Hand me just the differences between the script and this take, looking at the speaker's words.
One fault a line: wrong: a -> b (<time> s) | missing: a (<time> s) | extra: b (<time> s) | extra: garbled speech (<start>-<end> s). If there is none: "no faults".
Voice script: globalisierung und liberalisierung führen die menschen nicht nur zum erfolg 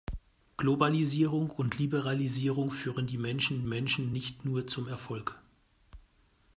extra: menschen (3.7 s)